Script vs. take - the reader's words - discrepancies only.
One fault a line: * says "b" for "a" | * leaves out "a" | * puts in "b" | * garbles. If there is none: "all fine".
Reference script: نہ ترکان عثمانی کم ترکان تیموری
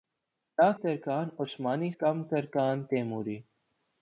all fine